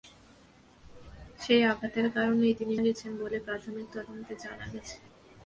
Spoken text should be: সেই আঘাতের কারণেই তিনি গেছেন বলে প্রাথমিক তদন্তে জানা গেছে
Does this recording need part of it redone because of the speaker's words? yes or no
no